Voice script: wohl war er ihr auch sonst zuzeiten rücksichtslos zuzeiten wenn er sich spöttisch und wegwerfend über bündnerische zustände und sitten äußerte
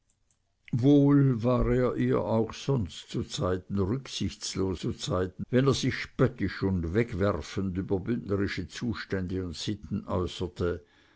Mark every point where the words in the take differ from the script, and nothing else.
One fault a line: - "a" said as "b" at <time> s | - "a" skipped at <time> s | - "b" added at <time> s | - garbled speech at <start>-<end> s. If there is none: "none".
none